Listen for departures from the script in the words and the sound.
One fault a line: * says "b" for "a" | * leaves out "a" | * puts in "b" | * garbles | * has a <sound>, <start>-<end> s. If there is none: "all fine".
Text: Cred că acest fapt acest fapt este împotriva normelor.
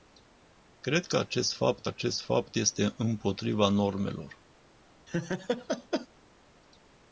* has a laugh, 5.1-6.1 s